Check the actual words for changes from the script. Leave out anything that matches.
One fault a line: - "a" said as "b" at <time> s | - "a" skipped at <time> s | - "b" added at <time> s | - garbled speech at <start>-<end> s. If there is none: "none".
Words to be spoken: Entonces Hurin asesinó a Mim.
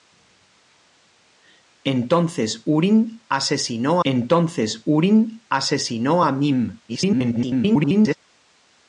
- "entonces Hurin asesinó" added at 4.0 s
- garbled speech at 6.9-8.2 s